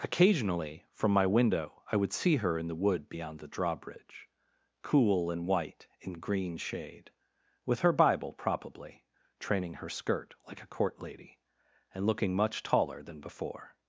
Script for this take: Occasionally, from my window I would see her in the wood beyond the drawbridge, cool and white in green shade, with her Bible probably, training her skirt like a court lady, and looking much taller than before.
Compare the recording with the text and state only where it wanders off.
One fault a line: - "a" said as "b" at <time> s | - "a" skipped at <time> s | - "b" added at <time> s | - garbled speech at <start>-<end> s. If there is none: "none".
none